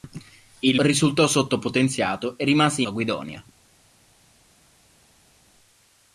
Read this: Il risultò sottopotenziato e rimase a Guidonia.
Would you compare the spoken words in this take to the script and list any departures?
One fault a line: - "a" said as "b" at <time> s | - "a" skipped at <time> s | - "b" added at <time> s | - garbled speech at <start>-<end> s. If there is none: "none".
none